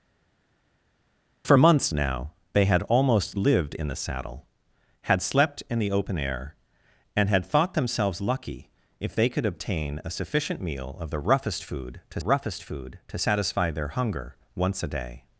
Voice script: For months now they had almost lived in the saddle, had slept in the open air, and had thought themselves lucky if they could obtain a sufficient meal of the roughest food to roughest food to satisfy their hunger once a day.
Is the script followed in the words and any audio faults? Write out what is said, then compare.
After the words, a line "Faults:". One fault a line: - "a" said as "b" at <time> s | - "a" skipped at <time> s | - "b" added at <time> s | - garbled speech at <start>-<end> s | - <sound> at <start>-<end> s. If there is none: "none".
For months now they had almost lived in the saddle, had slept in the open air, and had thought themselves lucky if they could obtain a sufficient meal of the roughest food to roughest food to satisfy their hunger once a day.
Faults:
none